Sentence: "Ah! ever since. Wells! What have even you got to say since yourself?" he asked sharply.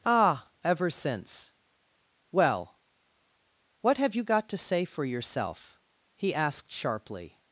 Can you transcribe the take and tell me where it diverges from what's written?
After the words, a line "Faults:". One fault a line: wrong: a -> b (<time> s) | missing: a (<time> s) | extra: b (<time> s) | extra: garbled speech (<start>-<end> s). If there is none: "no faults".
"Ah! ever since. Well! What have you got to say for yourself?" he asked sharply.
Faults:
wrong: Wells -> Well (2.3 s)
missing: even (4.2 s)
wrong: since -> for (4.9 s)